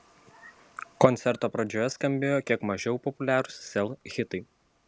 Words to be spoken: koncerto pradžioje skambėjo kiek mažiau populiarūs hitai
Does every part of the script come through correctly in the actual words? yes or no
no